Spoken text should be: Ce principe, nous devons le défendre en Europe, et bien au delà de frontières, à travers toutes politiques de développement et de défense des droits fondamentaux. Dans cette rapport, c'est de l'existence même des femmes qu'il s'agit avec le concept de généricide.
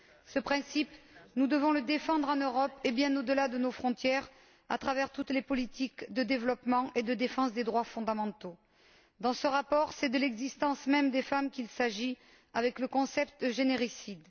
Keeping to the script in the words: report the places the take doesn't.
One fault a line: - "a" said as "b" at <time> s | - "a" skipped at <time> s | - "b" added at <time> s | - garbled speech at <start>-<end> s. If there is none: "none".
- "nos" added at 3.6 s
- "les" added at 5.3 s
- "cette" said as "ce" at 9.3 s